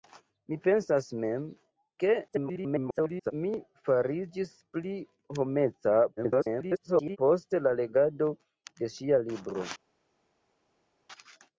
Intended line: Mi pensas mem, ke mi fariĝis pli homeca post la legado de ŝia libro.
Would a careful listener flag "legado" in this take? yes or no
no